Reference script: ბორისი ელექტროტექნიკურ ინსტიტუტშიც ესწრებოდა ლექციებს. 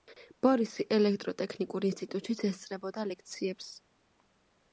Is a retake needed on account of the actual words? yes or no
no